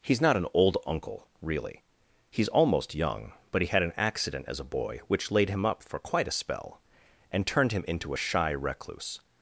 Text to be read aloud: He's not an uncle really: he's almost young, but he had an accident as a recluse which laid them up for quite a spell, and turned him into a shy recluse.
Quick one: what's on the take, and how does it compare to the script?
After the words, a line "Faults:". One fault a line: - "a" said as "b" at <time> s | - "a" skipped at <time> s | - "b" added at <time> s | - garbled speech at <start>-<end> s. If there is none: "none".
He's not an old uncle really: he's almost young, but he had an accident as a boy which laid him up for quite a spell, and turned him into a shy recluse.
Faults:
- "old" added at 0.5 s
- "recluse" said as "boy" at 4.6 s
- "them" said as "him" at 5.5 s